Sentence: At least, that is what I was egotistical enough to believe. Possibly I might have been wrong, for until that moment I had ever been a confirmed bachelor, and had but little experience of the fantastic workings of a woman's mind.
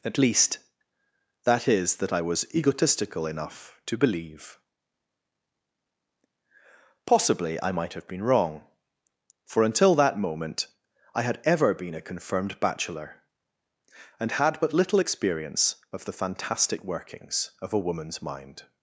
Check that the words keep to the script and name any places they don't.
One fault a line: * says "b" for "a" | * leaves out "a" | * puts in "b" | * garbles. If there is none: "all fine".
* says "that" for "what"